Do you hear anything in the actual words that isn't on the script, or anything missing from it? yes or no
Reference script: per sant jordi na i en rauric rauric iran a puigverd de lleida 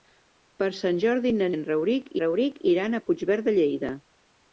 no